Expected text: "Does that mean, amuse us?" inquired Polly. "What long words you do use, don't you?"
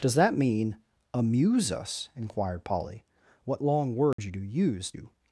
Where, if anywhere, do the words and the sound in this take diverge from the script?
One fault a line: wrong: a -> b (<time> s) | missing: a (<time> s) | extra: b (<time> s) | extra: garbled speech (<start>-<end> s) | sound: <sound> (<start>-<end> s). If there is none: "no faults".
sound: dropout (4.1-4.2 s)
missing: don't (4.9 s)